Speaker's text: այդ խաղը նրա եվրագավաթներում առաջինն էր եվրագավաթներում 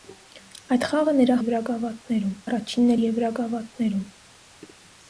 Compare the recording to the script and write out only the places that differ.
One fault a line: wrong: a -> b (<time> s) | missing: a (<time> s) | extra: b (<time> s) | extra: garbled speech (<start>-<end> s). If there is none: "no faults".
no faults